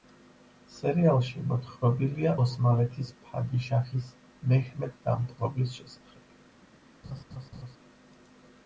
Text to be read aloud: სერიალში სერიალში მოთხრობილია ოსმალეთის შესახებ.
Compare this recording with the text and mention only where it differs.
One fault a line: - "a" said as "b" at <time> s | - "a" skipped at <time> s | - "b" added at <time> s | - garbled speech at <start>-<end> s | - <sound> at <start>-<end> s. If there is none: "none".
- "სერიალში" skipped at 1.4 s
- "ფადიშაჰის მეჰმედ დამპყრობლის" added at 3.2 s
- laugh at 7.0-7.8 s